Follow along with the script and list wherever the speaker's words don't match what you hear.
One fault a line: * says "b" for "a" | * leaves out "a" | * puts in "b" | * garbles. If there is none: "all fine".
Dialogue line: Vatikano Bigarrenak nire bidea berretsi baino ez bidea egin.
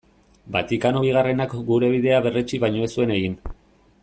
* says "gure" for "nire"
* says "zuen" for "bidea"